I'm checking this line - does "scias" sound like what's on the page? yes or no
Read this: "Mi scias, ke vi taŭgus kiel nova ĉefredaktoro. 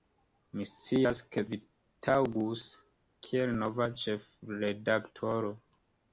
yes